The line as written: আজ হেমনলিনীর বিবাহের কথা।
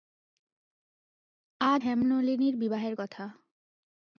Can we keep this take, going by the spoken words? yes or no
yes